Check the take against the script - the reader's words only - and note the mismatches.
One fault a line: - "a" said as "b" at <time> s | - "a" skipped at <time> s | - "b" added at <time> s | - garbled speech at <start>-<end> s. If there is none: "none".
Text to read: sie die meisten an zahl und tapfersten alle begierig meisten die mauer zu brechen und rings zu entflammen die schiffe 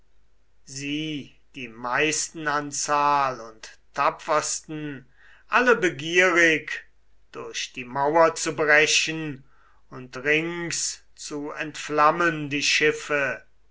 - "meisten" said as "durch" at 7.3 s